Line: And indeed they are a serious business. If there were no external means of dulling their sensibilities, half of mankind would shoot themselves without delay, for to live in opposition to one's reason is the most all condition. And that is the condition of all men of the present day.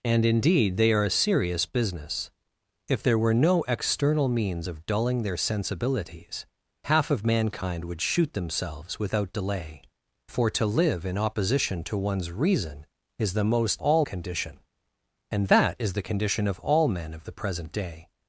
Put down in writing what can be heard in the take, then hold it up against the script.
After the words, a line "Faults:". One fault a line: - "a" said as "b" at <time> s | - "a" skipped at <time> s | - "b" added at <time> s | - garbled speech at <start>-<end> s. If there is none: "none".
And indeed they are a serious business. If there were no external means of dulling their sensibilities, half of mankind would shoot themselves without delay, for to live in opposition to one's reason is the most all condition. And that is the condition of all men of the present day.
Faults:
none